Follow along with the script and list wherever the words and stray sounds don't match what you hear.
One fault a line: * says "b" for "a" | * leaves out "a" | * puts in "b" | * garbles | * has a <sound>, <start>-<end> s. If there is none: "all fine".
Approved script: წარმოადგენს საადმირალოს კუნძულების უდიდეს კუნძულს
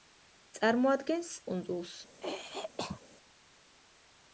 * leaves out "საადმირალოს კუნძულების უდიდეს"
* has a throat clearing, 2.2-3.0 s